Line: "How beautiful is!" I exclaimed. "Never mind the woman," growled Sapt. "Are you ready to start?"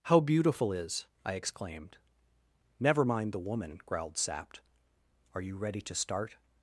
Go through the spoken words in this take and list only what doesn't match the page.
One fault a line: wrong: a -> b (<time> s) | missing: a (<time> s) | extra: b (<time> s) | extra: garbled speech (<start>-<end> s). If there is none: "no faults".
no faults